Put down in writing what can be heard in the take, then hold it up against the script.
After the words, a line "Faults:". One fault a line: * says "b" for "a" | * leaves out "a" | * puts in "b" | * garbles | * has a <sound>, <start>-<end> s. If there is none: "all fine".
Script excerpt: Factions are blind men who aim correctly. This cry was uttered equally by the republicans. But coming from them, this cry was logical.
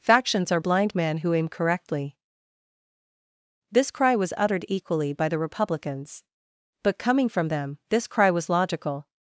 Factions are blind men who aim correctly. This cry was uttered equally by the republicans. But coming from them, this cry was logical.
Faults:
all fine